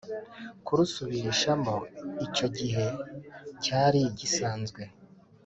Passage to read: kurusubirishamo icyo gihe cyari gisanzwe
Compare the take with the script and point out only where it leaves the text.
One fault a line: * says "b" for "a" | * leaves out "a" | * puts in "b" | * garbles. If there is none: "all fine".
all fine